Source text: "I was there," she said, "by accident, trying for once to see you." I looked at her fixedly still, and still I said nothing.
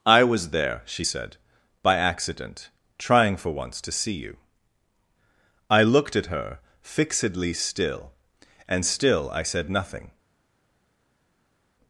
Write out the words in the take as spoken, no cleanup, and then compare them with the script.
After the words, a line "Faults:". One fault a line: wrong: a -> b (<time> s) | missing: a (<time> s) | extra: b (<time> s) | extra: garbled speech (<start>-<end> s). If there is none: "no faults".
"I was there," she said, "by accident, trying for once to see you." I looked at her fixedly still, and still I said nothing.
Faults:
no faults